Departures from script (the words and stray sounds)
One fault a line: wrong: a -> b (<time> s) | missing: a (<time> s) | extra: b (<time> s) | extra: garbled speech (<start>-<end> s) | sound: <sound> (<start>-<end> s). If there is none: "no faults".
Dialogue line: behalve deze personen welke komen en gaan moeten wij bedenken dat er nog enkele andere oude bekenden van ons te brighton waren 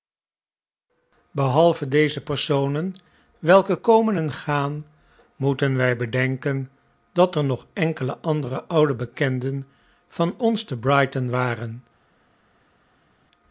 no faults